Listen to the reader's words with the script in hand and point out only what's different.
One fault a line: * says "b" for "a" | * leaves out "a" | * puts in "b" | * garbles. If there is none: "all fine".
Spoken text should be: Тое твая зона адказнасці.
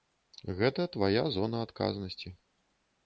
* says "Гэта" for "Тое"